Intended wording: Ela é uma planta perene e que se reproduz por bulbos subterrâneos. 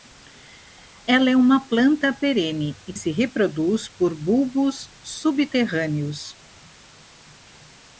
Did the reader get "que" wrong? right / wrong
wrong